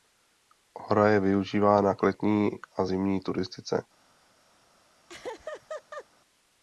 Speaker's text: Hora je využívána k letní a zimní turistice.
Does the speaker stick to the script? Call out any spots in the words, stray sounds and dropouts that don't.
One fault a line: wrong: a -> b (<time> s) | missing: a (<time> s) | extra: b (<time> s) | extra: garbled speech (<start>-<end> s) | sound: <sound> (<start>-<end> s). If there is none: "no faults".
sound: laugh (5.1-6.1 s)